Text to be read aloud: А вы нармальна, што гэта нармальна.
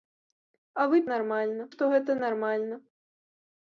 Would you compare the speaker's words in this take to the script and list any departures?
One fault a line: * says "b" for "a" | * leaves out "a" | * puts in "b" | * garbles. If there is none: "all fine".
all fine